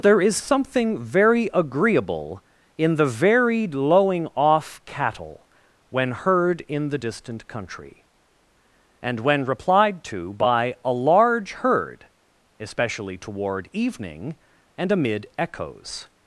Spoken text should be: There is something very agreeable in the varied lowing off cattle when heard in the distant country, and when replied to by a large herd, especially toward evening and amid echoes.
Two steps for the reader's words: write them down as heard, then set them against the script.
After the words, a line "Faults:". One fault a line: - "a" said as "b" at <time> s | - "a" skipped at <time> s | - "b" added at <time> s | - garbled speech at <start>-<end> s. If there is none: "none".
There is something very agreeable in the varied lowing off cattle when heard in the distant country, and when replied to by a large herd, especially toward evening and amid echoes.
Faults:
none